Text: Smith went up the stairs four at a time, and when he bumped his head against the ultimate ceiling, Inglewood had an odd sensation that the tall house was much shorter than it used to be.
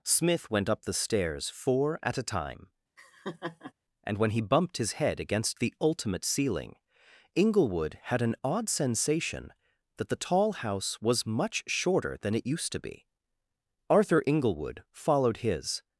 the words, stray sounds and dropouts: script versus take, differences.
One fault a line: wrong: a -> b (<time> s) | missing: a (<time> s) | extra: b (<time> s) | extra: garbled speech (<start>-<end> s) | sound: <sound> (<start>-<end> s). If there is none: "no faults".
sound: laugh (3.0-3.7 s)
extra: Arthur Inglewood followed his (13.9 s)